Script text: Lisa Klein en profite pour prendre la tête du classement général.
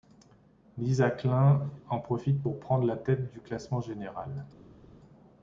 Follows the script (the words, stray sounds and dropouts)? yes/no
yes